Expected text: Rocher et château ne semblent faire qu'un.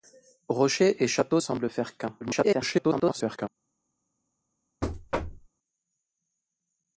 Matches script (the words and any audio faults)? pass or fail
fail